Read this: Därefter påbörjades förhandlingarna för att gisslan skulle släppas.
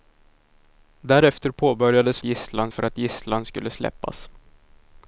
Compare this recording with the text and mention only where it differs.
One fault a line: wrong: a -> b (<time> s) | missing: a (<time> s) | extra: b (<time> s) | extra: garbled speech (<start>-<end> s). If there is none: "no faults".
wrong: förhandlingarna -> gisslan (2.2 s)